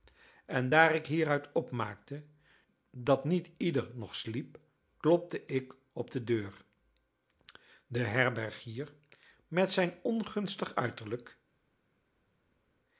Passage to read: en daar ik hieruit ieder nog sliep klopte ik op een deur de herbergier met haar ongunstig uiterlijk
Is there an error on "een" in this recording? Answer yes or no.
yes